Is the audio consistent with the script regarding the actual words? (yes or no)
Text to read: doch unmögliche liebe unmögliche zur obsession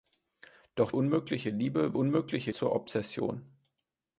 yes